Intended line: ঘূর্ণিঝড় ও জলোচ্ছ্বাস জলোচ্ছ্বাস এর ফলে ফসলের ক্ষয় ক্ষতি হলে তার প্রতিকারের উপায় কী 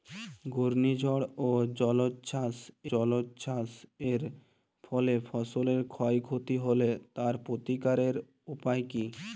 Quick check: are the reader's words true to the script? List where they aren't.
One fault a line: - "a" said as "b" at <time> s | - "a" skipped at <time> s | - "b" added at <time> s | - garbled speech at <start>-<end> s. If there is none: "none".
none